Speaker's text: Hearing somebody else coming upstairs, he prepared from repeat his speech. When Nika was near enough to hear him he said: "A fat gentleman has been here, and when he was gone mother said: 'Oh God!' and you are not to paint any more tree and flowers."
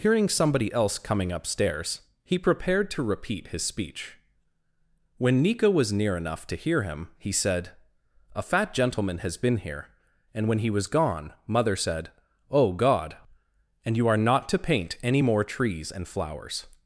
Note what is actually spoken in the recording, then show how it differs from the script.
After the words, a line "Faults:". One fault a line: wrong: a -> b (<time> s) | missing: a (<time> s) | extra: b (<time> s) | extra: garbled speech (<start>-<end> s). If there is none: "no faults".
Hearing somebody else coming upstairs, he prepared to repeat his speech. When Nika was near enough to hear him he said: "A fat gentleman has been here, and when he was gone mother said: 'Oh God!' and you are not to paint any more trees and flowers."
Faults:
wrong: from -> to (2.9 s)
wrong: tree -> trees (15.4 s)